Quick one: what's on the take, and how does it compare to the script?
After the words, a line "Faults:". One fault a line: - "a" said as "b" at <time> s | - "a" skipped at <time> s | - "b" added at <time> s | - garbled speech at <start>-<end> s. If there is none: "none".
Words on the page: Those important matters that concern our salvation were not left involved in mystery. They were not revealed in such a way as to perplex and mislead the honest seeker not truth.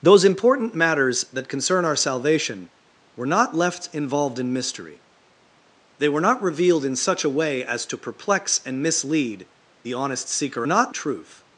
Those important matters that concern our salvation were not left involved in mystery. They were not revealed in such a way as to perplex and mislead the honest seeker not truth.
Faults:
none